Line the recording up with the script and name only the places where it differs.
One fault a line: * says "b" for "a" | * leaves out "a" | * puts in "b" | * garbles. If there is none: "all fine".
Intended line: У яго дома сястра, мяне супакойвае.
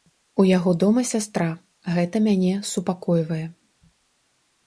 * puts in "гэта"